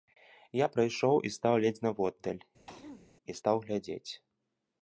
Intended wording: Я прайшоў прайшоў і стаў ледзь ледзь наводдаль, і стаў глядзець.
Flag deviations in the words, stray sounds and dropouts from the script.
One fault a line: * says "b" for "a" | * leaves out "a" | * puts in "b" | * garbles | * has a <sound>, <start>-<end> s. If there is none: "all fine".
* leaves out "прайшоў"
* leaves out "ледзь"
* has a throat clearing, 2.7-3.1 s